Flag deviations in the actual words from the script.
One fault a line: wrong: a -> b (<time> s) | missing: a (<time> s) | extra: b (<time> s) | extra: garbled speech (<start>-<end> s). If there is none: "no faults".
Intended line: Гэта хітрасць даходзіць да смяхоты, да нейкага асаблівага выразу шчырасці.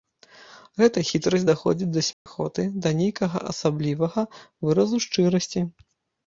no faults